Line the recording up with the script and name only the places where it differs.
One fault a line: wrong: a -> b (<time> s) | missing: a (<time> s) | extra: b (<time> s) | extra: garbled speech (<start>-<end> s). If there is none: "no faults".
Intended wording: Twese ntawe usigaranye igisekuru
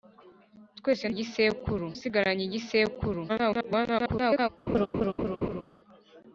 wrong: ntawe -> igisekuru (1.1 s)
extra: garbled speech (3.3-4.5 s)